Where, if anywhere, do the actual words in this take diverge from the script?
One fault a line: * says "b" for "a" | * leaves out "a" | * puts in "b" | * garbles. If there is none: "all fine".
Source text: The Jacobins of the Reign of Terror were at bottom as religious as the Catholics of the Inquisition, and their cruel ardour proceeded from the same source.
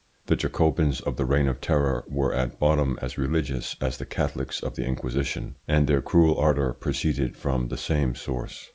all fine